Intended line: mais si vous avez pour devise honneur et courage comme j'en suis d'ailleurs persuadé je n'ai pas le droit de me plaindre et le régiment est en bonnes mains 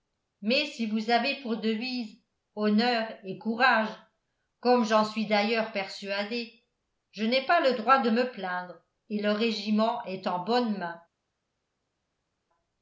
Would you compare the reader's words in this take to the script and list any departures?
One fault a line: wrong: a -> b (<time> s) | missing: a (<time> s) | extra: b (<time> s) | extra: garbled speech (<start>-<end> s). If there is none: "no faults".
no faults